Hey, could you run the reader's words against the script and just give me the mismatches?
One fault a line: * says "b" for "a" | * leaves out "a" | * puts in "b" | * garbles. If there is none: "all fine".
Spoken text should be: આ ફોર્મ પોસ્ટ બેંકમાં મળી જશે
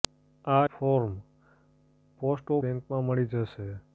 all fine